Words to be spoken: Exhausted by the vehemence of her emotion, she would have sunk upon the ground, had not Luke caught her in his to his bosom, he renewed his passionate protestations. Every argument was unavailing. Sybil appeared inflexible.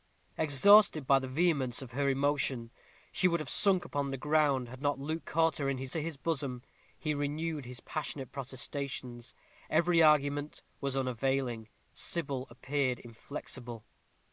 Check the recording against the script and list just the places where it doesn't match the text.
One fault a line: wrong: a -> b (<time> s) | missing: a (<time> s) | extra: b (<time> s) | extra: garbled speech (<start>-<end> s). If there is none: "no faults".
no faults